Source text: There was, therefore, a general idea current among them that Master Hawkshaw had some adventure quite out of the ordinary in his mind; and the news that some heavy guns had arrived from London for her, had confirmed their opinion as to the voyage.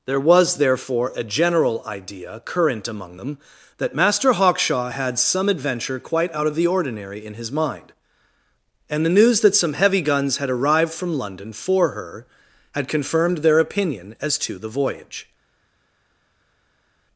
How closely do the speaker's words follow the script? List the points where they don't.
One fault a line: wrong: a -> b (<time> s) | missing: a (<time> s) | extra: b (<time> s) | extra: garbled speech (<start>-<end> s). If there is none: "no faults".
no faults